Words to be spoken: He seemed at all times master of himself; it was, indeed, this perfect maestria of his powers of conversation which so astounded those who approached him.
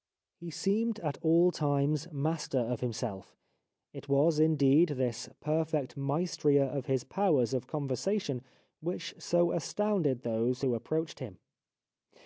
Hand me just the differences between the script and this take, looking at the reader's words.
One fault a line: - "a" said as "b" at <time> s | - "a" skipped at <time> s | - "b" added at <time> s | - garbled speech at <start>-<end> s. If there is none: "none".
none